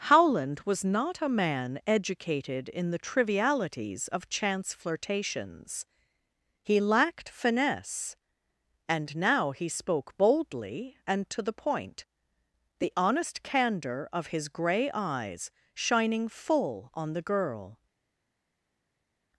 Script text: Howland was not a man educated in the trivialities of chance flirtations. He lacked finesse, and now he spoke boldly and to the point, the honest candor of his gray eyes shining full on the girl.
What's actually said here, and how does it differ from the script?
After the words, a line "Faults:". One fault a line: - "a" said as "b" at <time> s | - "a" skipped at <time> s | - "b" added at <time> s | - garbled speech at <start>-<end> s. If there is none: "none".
Howland was not a man educated in the trivialities of chance flirtations. He lacked finesse, and now he spoke boldly and to the point, the honest candor of his gray eyes shining full on the girl.
Faults:
none